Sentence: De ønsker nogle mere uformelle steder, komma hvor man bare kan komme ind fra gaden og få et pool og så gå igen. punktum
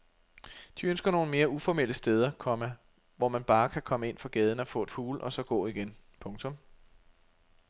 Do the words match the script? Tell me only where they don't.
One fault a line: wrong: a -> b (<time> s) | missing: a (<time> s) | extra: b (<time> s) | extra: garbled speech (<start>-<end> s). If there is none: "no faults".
no faults